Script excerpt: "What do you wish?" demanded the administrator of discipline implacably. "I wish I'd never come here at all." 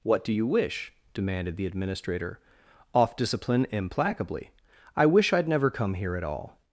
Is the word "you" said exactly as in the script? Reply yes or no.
yes